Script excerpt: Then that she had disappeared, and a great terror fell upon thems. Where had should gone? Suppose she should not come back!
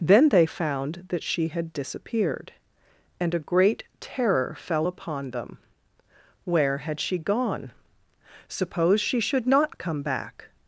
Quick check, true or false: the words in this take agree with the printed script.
false